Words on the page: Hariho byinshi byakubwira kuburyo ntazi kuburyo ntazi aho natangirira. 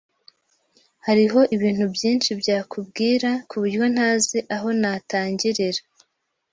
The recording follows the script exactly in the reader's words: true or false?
false